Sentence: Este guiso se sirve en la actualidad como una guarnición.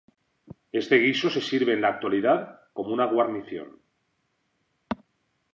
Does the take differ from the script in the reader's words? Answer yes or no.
no